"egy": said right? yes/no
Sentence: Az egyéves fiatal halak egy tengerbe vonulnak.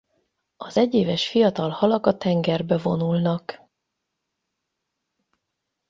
no